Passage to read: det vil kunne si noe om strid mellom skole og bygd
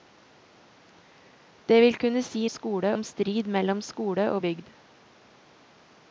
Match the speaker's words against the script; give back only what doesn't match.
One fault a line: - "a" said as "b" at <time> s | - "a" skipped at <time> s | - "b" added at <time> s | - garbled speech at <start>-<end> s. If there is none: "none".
- "noe" said as "skole" at 2.5 s